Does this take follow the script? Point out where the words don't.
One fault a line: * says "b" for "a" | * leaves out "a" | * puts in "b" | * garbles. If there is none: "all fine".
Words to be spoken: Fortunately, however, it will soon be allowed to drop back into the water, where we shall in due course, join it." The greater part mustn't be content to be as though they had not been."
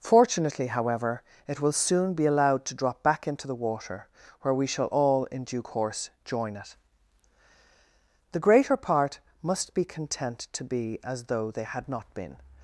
* puts in "all"
* says "must" for "mustn't"